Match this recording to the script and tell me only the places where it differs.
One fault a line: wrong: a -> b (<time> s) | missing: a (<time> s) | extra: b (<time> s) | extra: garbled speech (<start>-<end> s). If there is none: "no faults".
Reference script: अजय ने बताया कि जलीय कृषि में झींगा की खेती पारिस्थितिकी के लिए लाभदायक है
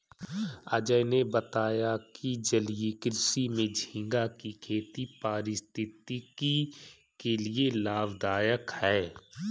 no faults